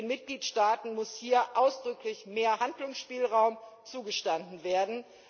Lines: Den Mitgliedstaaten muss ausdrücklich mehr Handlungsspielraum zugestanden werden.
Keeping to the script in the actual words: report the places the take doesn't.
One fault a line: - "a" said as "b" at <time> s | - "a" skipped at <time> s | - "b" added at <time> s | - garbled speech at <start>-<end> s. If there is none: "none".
- "hier" added at 1.1 s